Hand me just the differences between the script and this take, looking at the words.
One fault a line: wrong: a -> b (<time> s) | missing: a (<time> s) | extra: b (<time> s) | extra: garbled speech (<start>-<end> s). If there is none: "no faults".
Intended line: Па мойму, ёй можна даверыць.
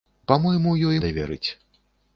missing: можна (1.0 s)